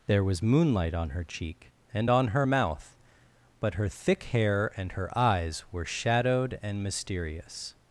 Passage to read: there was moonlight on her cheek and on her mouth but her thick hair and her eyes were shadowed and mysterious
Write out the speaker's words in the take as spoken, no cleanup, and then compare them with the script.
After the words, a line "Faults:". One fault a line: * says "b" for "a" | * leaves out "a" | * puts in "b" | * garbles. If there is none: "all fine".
there was moonlight on her cheek and on her mouth but her thick hair and her eyes were shadowed and mysterious
Faults:
all fine